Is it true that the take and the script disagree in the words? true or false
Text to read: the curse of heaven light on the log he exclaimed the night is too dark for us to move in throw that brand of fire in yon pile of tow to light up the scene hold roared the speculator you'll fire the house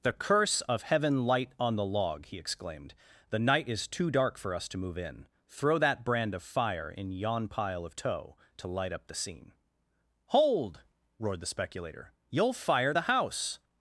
false